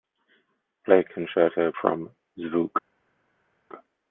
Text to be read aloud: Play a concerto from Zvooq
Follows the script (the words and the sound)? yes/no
yes